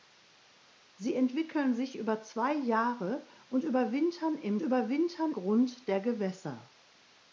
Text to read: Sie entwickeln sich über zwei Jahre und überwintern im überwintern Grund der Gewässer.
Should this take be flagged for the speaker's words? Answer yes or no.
no